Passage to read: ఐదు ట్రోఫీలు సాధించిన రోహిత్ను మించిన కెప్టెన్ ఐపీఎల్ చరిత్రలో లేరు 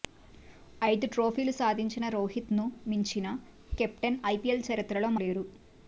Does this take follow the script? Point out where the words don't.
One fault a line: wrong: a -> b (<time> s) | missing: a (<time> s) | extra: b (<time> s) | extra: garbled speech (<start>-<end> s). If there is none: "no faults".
no faults